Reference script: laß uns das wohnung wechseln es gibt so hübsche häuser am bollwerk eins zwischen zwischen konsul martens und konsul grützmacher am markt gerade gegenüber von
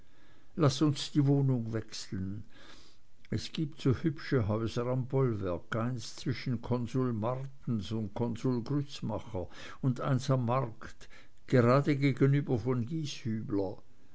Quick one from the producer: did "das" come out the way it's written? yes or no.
no